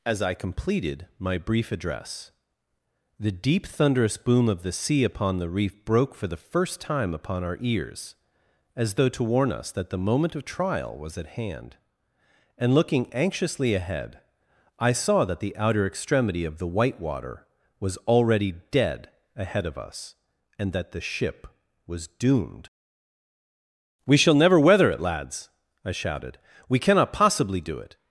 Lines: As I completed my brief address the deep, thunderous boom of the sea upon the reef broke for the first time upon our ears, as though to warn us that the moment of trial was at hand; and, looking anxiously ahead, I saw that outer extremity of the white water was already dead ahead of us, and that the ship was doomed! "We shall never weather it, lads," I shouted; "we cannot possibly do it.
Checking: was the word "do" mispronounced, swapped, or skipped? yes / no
no